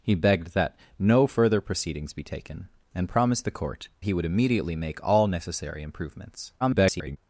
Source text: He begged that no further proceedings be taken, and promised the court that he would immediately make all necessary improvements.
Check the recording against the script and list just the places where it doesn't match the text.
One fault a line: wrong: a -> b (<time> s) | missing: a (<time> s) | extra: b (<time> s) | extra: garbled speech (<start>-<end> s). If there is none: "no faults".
missing: that (3.9 s)
extra: garbled speech (6.6-7.2 s)